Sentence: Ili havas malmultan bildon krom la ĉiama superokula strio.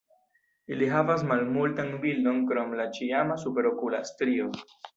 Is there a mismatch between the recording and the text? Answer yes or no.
no